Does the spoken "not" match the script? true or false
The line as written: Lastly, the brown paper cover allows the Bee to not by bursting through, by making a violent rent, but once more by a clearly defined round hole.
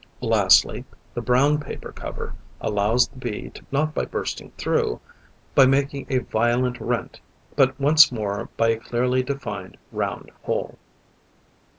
true